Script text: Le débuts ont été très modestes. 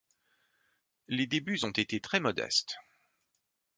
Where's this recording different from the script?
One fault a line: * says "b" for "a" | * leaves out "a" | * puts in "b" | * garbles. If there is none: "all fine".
* says "Les" for "Le"